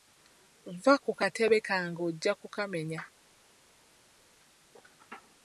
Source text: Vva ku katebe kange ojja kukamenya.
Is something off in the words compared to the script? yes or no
no